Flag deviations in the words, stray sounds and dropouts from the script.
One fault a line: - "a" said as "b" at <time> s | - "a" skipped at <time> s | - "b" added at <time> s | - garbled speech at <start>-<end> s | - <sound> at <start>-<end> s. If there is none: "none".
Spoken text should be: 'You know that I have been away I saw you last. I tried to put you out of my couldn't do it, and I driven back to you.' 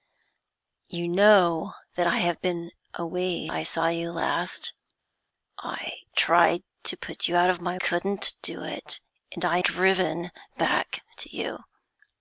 none